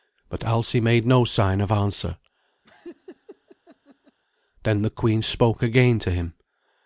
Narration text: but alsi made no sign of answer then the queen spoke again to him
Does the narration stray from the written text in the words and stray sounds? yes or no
yes